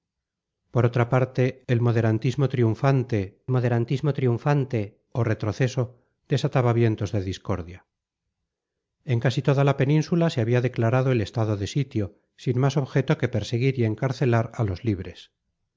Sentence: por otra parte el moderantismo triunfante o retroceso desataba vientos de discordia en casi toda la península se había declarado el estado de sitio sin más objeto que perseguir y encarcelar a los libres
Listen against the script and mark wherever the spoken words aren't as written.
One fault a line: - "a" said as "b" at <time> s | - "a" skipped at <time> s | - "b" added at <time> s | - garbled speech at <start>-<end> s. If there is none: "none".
- "moderantismo triunfante" added at 3.5 s